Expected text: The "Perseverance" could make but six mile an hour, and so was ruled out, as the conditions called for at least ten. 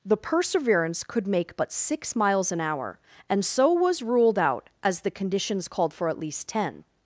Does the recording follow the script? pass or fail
fail